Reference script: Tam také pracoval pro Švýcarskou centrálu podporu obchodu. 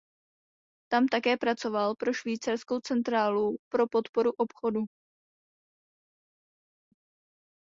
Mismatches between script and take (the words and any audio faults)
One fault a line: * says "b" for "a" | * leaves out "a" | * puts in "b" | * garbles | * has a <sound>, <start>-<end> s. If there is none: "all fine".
* puts in "pro"